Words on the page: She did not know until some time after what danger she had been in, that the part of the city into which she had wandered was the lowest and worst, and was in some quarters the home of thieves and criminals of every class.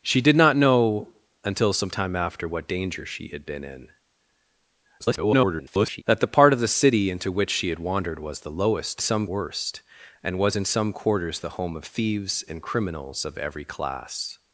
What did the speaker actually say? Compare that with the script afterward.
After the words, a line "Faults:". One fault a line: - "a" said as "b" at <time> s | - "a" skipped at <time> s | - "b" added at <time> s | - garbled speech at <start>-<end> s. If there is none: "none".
She did not know until some time after what danger she had been in, [garbled] that the part of the city into which she had wandered was the lowest some worst, and was in some quarters the home of thieves and criminals of every class.
Faults:
- garbled speech at 5.0-6.0 s
- "and" said as "some" at 9.0 s